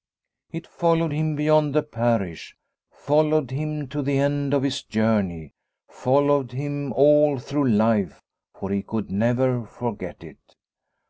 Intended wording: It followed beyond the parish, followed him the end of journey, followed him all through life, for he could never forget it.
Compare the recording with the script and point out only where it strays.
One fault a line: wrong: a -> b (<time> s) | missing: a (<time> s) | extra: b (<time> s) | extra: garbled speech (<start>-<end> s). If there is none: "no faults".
extra: him (1.1 s)
extra: to (3.9 s)
extra: his (4.6 s)